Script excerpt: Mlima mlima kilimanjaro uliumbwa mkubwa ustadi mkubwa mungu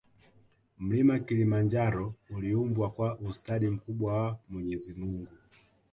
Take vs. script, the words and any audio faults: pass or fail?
fail